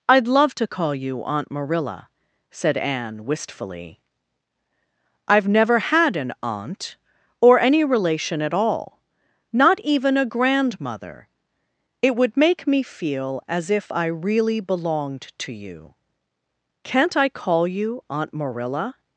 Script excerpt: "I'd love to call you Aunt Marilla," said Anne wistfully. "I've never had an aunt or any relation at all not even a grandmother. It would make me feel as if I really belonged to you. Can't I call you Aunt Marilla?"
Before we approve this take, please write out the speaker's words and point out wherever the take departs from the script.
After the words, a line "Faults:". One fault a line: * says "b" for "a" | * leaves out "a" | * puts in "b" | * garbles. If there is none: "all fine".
"I'd love to call you Aunt Marilla," said Anne wistfully. "I've never had an aunt or any relation at all not even a grandmother. It would make me feel as if I really belonged to you. Can't I call you Aunt Marilla?"
Faults:
all fine